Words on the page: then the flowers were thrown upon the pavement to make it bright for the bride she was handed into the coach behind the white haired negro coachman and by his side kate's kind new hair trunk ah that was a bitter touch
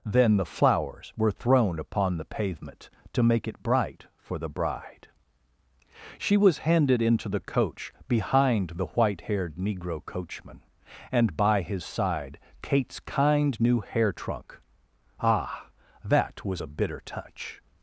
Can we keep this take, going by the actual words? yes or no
yes